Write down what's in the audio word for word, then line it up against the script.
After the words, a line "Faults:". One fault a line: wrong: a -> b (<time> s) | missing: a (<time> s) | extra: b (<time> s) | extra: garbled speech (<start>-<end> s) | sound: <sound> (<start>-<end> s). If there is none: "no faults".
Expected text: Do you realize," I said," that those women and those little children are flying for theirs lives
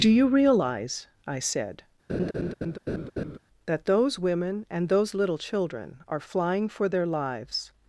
Do you realize," I said," that those women and those little children are flying for their lives
Faults:
sound: laugh (2.1-3.4 s)
wrong: theirs -> their (6.9 s)